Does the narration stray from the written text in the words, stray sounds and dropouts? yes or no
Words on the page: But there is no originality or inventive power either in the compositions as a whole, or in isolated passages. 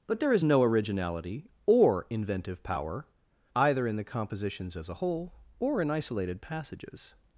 no